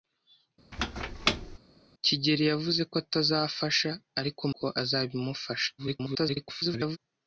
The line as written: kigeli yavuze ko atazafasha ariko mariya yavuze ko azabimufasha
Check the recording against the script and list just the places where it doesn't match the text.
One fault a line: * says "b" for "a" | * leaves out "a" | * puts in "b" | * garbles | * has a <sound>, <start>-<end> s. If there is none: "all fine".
* has a squeak, 0.7-1.6 s
* leaves out "mariya yavuze"
* garbles